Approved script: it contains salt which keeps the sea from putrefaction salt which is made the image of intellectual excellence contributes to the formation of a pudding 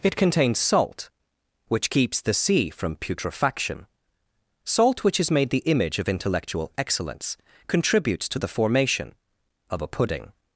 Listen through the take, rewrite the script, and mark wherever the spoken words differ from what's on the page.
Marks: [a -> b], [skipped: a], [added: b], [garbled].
it contains salt which keeps the sea from putrefaction salt which is made the image of intellectual excellence contributes to the formation of a pudding